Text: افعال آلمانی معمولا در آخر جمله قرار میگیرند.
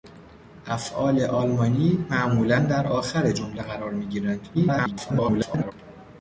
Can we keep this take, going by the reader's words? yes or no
no